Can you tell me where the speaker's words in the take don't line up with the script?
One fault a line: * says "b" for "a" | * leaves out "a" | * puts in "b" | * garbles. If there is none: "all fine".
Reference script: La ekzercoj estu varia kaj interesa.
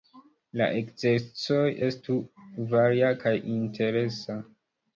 all fine